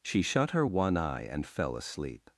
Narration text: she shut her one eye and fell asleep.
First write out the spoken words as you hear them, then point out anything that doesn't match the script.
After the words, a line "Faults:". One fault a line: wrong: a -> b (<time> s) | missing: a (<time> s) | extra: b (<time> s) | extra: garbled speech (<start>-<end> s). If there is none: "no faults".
she shut her one eye and fell asleep.
Faults:
no faults